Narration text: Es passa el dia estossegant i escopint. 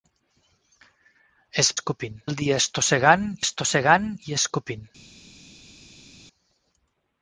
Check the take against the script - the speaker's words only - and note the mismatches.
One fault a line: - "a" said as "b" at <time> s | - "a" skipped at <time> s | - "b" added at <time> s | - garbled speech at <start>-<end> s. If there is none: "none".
- "passa" said as "escopint" at 1.7 s
- "estossegant" added at 3.5 s